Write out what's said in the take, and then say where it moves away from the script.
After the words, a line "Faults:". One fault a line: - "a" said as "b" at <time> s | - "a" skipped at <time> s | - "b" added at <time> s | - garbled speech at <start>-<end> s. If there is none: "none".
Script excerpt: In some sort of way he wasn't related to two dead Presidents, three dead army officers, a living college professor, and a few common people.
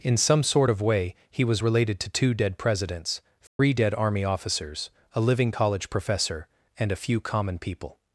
In some sort of way he was related to two dead Presidents, three dead army officers, a living college professor, and a few common people.
Faults:
- "wasn't" said as "was" at 1.4 s